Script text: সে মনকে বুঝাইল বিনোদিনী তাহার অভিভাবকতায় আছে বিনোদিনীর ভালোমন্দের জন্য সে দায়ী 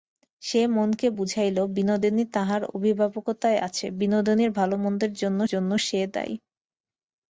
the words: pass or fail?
fail